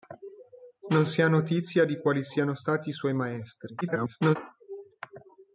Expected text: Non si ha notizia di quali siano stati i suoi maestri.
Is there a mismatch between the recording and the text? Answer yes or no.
yes